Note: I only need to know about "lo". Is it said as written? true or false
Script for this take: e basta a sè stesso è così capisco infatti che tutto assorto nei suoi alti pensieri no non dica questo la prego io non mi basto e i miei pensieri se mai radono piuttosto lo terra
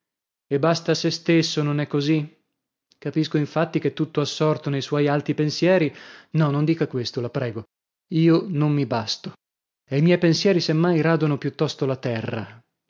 false